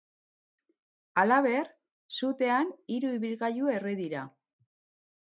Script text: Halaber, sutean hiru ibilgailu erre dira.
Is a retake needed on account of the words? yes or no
no